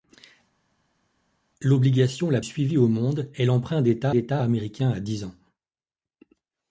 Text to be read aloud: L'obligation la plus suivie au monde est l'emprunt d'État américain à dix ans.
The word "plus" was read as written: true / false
false